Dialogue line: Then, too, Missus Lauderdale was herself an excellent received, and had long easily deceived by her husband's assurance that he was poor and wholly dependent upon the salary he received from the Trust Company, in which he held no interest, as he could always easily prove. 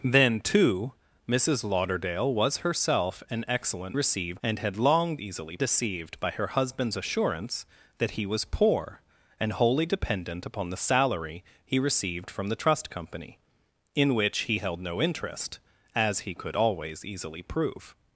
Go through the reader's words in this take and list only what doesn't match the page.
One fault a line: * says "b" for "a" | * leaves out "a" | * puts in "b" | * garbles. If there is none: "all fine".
all fine